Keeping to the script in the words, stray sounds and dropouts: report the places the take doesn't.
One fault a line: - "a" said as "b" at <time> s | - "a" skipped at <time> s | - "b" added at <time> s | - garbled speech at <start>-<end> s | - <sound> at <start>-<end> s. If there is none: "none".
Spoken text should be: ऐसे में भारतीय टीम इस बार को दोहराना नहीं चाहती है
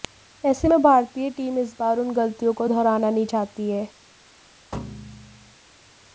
- "उन गलतियों" added at 2.0 s
- thud at 4.7-5.6 s